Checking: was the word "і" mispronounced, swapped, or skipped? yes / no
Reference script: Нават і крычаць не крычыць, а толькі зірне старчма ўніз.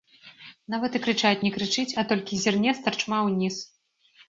no